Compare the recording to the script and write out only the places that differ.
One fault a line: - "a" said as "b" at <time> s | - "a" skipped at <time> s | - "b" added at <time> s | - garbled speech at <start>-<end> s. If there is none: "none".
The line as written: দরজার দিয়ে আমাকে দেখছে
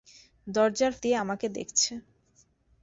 none